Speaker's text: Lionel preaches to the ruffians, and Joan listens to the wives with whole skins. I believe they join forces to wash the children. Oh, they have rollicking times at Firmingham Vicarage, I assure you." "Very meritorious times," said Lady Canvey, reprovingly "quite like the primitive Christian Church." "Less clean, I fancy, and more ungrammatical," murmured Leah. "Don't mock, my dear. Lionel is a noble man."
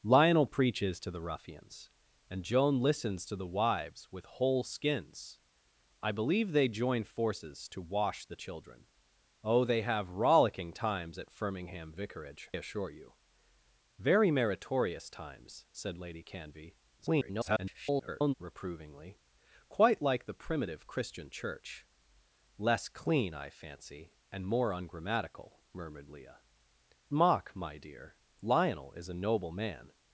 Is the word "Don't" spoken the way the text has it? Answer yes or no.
no